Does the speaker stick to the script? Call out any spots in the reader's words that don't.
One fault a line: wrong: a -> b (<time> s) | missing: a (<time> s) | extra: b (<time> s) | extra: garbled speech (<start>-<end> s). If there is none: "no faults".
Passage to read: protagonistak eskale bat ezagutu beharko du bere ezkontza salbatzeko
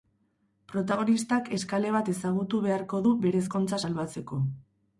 no faults